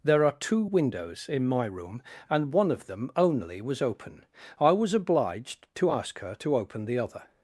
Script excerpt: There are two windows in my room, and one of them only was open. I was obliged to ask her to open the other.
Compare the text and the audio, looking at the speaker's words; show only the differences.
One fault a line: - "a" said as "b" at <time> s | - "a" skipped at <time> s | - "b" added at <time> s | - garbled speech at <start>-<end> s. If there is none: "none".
none